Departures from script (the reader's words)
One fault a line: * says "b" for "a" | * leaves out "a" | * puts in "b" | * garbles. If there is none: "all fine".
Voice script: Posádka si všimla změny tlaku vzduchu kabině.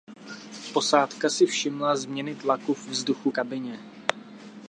all fine